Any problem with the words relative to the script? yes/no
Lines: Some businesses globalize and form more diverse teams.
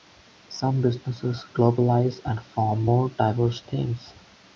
no